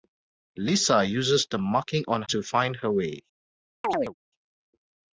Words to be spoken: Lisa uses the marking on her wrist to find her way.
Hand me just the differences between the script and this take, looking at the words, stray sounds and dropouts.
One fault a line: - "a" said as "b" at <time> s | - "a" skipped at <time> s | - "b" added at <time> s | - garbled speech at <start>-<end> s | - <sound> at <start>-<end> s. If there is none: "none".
- "her wrist" skipped at 2.2 s
- chirp at 3.8-4.1 s